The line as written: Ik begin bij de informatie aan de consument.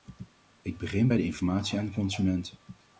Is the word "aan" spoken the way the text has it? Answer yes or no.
yes